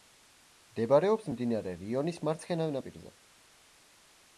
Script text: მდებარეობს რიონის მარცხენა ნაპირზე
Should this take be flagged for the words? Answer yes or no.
yes